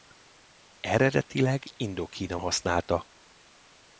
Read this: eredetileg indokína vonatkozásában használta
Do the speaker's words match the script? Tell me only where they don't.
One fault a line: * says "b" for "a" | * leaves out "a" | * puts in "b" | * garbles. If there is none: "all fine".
* leaves out "vonatkozásában"